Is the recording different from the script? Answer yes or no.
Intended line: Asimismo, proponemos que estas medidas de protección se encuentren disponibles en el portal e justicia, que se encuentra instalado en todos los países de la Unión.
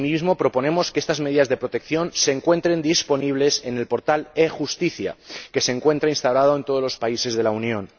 no